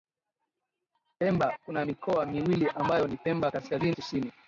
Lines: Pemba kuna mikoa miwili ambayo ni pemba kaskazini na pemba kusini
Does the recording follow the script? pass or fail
fail